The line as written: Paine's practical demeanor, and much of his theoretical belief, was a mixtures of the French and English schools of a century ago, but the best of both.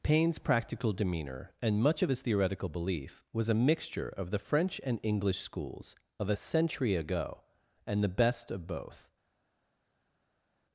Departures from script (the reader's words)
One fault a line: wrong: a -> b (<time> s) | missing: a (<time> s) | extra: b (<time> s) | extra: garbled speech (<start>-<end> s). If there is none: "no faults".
wrong: mixtures -> mixture (3.5 s)
wrong: but -> and (7.9 s)